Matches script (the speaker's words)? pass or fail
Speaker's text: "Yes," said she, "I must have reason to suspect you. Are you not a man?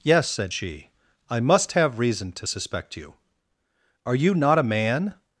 pass